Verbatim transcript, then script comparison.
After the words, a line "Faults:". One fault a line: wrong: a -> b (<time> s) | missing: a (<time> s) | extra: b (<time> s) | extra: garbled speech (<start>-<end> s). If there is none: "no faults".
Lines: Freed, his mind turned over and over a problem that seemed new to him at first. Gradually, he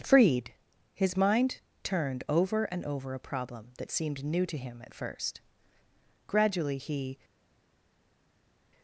Freed, his mind turned over and over a problem that seemed new to him at first. Gradually, he
Faults:
no faults